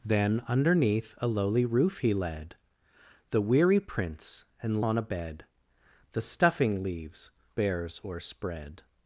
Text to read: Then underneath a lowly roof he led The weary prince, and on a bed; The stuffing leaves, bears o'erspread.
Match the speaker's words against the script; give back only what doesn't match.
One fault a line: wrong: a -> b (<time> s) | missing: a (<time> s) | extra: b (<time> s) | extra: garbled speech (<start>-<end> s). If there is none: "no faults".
no faults